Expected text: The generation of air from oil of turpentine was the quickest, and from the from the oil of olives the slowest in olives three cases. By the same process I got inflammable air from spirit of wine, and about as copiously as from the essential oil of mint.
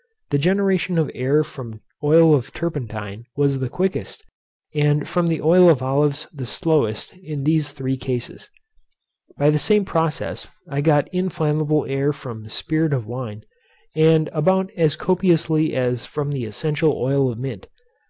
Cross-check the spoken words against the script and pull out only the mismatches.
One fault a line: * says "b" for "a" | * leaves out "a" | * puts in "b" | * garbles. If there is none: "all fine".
* leaves out "from the"
* says "these" for "olives"